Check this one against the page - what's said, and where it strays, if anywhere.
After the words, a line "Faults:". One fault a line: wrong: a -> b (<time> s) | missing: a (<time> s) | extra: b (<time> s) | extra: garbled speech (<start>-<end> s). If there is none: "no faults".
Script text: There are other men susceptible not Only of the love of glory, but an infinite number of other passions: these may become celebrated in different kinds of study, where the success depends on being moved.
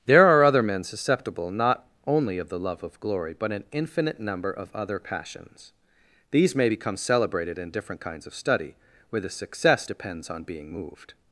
There are other men susceptible not Only of the love of glory, but an infinite number of other passions: these may become celebrated in different kinds of study, where the success depends on being moved.
Faults:
no faults